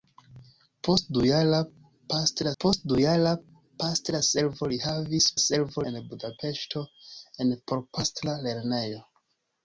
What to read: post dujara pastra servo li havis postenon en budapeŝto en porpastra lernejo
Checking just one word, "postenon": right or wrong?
wrong